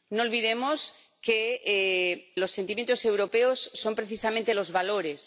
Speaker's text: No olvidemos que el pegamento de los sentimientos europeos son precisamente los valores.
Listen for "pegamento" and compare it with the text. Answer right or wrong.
wrong